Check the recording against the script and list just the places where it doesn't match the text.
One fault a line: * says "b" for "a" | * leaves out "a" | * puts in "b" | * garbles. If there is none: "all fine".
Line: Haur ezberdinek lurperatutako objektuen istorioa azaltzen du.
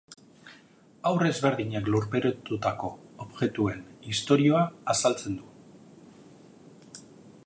all fine